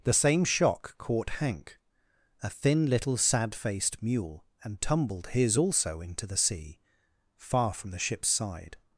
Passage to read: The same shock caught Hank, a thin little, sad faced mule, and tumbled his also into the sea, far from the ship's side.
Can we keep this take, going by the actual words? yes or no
yes